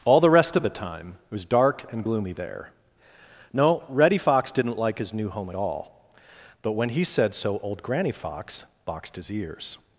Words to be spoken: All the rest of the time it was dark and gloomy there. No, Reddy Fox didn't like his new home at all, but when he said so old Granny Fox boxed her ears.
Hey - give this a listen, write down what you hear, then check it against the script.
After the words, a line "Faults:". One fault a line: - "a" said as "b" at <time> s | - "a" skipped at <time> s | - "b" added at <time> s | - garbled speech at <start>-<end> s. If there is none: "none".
All the rest of the time it was dark and gloomy there. No, Reddy Fox didn't like his new home at all, but when he said so old Granny Fox boxed his ears.
Faults:
- "her" said as "his" at 9.1 s